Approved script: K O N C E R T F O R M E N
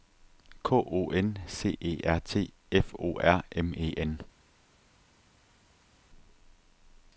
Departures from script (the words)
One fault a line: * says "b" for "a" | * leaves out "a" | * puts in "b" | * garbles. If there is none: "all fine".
all fine